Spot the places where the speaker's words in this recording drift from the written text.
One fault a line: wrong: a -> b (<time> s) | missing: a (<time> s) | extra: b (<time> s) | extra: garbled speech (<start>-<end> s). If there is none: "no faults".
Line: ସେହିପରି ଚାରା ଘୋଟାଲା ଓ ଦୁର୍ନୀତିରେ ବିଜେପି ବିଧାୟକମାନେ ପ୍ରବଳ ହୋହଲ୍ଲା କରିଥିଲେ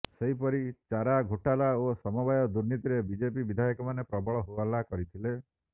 extra: ସମବାୟ (2.0 s)